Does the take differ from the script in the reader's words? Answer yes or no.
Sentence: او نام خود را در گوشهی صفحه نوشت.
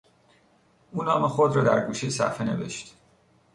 no